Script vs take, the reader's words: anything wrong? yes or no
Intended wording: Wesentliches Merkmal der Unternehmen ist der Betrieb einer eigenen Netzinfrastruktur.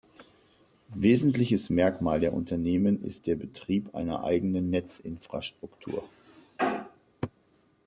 no